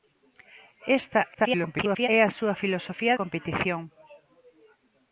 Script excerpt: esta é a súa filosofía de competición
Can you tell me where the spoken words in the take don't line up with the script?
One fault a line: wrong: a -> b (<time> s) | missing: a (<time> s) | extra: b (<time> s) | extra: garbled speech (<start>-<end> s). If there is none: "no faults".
extra: garbled speech (1.3-2.1 s)
missing: de (3.1 s)